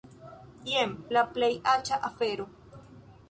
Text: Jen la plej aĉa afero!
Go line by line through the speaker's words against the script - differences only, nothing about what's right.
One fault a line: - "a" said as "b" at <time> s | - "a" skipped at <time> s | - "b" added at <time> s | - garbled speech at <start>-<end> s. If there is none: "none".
none